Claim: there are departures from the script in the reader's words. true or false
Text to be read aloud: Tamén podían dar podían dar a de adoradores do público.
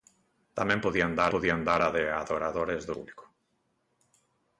false